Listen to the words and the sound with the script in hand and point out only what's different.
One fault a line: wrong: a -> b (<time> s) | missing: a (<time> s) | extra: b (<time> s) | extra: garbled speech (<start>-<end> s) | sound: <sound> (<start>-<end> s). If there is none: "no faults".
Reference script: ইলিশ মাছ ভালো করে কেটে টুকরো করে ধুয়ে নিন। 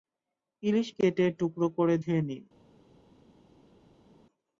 missing: মাছ ভালো করে (0.9 s)